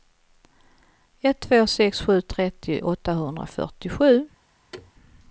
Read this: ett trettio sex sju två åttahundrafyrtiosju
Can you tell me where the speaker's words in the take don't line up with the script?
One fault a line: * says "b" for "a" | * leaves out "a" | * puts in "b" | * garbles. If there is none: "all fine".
* says "två" for "trettio"
* says "trettio" for "två"